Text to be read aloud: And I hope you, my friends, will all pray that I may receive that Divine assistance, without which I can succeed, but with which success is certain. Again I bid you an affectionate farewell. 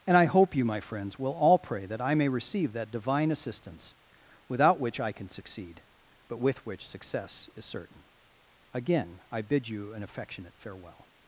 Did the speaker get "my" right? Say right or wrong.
right